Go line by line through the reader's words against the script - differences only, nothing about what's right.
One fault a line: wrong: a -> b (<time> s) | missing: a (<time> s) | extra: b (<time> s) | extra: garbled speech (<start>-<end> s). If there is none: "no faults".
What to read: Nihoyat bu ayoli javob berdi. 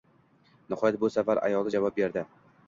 extra: safar (1.2 s)